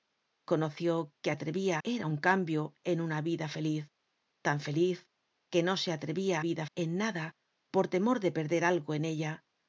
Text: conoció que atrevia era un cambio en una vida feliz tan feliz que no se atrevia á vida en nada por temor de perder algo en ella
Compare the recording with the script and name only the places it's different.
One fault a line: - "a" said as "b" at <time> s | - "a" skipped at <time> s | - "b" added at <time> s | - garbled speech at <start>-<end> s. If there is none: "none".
none